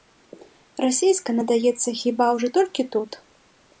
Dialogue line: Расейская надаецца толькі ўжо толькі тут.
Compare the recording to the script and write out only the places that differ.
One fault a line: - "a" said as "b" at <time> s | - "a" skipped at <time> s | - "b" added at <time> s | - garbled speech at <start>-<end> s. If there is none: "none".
- "толькі" said as "хіба" at 2.0 s